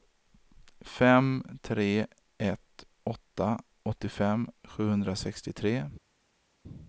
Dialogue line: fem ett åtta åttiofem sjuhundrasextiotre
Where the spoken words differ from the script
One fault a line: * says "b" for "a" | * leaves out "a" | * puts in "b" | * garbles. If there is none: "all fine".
* puts in "tre"